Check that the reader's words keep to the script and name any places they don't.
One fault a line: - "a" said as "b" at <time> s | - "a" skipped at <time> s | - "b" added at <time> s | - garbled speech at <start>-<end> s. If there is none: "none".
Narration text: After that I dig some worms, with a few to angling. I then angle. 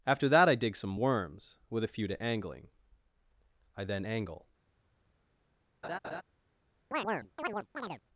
none